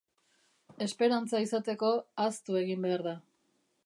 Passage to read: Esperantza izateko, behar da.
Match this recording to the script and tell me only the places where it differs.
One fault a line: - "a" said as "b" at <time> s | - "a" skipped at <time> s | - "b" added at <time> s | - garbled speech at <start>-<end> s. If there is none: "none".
- "ahaztu egin" added at 2.2 s